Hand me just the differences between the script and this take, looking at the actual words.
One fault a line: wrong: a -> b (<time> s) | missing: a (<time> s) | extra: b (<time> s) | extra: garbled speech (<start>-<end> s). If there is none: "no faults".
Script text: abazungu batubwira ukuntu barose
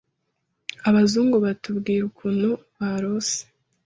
no faults